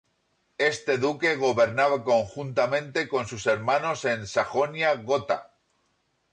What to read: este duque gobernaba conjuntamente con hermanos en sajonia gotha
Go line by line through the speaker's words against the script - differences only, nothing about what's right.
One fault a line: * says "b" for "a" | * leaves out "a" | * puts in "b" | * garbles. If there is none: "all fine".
* puts in "sus"